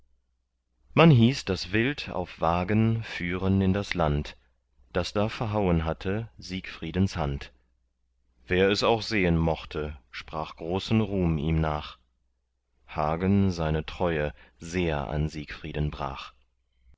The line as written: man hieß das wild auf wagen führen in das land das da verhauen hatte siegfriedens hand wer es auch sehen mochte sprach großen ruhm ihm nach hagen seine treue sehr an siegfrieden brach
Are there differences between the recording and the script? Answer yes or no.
no